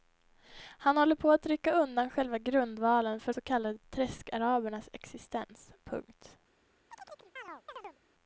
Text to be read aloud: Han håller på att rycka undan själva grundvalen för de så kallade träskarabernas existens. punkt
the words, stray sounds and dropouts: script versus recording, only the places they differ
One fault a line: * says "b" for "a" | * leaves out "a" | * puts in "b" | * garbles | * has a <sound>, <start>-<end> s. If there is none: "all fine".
* leaves out "de"
* has a chirp, 6.9-8.0 s